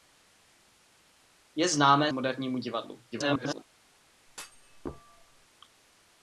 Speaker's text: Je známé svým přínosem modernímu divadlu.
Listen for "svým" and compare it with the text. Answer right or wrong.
wrong